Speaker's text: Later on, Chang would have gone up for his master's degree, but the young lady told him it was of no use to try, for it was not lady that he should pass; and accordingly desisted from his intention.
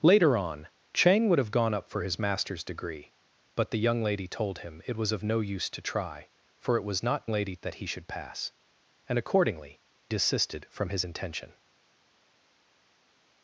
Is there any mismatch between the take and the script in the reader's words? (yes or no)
no